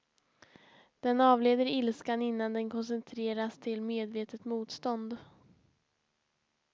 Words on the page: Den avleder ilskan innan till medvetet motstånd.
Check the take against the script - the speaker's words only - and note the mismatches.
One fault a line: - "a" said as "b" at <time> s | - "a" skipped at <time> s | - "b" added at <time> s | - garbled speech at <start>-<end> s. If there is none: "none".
- "den koncentreras" added at 2.5 s